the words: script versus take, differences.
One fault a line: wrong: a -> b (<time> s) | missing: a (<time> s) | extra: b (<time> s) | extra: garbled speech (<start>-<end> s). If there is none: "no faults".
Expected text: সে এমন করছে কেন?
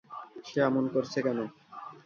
no faults